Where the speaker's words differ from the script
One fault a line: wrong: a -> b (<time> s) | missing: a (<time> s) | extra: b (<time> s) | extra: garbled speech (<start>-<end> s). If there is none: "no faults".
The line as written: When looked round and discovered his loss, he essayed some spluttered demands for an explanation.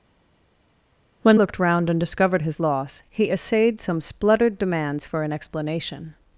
no faults